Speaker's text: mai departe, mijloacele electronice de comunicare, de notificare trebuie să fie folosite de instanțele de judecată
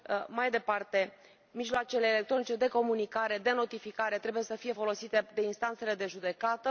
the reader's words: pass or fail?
pass